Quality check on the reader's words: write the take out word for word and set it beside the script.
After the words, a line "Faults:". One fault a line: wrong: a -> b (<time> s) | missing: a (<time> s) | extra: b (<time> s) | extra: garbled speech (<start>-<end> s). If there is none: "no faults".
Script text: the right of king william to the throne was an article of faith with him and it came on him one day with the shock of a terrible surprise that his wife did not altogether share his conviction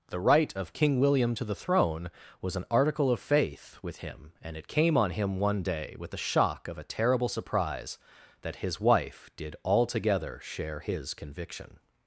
the right of king william to the throne was an article of faith with him and it came on him one day with the shock of a terrible surprise that his wife did altogether share his conviction
Faults:
missing: not (9.6 s)